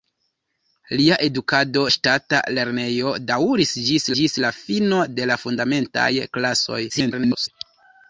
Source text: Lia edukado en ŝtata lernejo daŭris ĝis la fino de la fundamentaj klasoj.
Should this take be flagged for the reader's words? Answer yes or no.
yes